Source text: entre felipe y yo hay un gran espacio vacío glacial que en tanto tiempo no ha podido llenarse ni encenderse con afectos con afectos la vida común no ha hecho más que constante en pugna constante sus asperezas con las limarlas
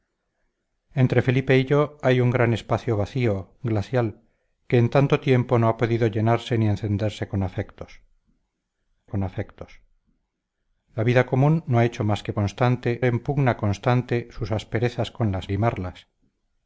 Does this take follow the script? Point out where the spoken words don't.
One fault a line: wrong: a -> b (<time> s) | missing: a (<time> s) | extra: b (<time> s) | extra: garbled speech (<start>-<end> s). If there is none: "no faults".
no faults